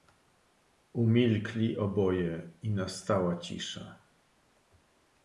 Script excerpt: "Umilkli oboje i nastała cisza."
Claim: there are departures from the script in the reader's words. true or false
false